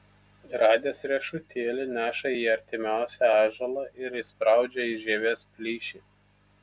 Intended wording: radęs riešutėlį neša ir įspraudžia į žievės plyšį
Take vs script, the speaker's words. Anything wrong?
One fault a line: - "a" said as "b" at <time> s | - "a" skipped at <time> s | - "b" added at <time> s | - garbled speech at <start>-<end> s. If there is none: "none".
- "į artimiausią ąžuolą" added at 2.3 s